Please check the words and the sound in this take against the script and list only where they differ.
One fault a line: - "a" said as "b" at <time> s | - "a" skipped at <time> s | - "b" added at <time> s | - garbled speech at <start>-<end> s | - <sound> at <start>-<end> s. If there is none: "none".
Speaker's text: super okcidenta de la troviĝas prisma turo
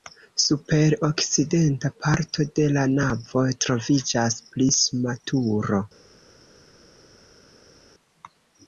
- "parto" added at 2.0 s
- "navo" added at 3.0 s